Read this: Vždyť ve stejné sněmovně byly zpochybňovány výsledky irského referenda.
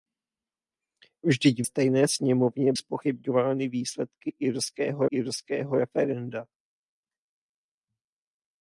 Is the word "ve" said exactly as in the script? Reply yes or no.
no